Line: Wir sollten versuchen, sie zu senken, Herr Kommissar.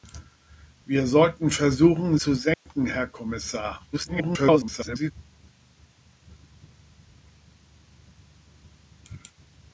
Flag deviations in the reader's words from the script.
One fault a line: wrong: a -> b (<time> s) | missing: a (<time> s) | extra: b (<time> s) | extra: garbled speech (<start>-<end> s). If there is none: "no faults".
missing: sie (2.2 s)
extra: garbled speech (3.9-5.1 s)